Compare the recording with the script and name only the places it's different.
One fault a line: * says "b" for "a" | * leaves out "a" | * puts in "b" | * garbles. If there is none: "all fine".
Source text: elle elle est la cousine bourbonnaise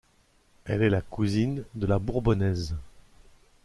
* leaves out "elle"
* puts in "de la"